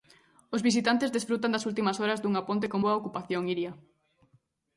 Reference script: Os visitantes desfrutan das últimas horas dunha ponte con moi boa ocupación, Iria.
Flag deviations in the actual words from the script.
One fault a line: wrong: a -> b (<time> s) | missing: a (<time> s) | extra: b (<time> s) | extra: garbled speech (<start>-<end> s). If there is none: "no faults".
missing: moi (2.8 s)